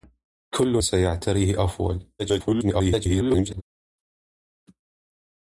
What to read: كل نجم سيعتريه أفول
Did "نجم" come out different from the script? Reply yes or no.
yes